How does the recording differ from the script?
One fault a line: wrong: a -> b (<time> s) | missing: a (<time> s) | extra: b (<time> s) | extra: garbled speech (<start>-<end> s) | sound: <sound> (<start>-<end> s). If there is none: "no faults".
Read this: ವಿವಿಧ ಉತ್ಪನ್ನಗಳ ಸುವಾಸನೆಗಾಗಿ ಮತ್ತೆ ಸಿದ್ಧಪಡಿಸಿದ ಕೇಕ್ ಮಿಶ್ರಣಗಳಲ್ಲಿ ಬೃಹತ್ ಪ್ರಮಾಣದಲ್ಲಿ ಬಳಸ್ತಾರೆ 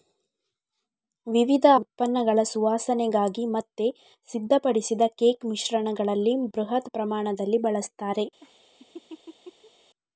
sound: laugh (8.4-9.7 s)